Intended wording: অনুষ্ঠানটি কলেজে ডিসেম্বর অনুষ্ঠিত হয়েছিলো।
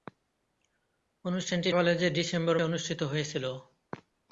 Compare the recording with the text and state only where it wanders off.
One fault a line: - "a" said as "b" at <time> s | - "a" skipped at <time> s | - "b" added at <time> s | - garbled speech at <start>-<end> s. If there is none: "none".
none